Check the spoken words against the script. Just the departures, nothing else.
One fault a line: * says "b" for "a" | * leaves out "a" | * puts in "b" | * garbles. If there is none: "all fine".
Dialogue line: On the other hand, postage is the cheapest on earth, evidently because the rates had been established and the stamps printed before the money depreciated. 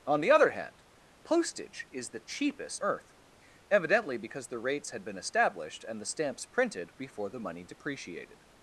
* leaves out "on"